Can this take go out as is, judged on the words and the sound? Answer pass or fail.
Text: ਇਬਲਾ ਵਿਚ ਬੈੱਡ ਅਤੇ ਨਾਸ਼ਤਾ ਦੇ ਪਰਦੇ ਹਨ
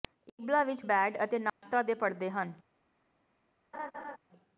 fail